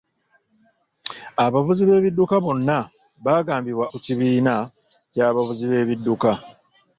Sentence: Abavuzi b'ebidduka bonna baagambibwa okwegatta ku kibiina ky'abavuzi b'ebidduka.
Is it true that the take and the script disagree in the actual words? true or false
true